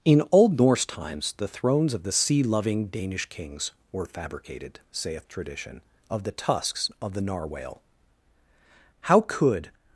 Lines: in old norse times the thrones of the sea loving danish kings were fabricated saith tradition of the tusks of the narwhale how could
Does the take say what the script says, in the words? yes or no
yes